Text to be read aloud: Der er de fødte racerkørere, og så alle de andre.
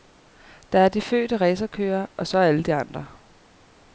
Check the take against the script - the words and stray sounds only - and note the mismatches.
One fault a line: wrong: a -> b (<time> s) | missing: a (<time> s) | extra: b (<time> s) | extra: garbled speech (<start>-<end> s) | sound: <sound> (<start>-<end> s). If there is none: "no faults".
no faults